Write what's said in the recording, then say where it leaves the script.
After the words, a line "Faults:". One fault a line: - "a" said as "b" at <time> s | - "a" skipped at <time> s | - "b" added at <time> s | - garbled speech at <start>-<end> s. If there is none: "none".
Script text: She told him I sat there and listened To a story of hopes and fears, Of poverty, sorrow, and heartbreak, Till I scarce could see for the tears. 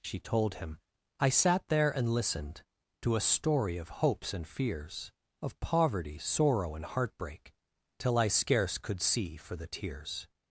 She told him I sat there and listened To a story of hopes and fears, Of poverty, sorrow, and heartbreak, Till I scarce could see for the tears.
Faults:
none